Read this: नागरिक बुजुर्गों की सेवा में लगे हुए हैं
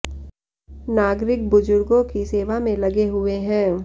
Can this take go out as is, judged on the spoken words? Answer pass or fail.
pass